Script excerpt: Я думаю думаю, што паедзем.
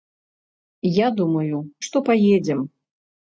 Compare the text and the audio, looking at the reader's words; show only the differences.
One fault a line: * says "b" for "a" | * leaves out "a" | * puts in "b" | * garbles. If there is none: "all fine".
* leaves out "думаю"